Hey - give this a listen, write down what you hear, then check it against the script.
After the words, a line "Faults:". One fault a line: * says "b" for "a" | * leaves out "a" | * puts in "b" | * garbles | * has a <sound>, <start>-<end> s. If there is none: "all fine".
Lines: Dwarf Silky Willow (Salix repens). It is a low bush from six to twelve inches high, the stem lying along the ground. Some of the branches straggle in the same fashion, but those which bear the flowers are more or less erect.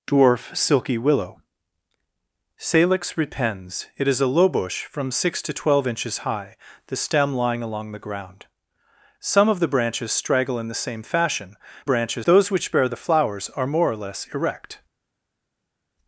Dwarf Silky Willow (Salix repens). It is a low bush from six to twelve inches high, the stem lying along the ground. Some of the branches straggle in the same fashion, branches those which bear the flowers are more or less erect.
Faults:
* says "branches" for "but"